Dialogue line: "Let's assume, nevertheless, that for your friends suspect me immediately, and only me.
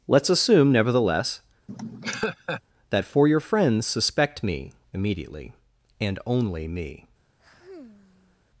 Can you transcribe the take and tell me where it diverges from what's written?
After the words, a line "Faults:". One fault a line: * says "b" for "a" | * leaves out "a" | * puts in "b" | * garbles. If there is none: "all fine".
"Let's assume, nevertheless, that for your friends suspect me immediately, and only me.
Faults:
all fine